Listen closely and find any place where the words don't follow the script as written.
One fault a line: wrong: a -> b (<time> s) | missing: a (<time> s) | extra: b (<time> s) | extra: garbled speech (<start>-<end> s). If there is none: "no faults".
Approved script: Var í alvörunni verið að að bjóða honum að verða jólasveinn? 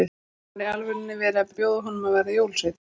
no faults